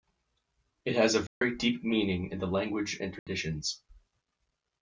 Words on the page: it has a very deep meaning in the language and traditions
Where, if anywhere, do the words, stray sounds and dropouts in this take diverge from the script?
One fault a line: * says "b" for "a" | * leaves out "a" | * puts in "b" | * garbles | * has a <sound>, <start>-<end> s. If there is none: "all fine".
* has a dropout, 1.3-1.4 s
* has a dropout, 3.2-3.3 s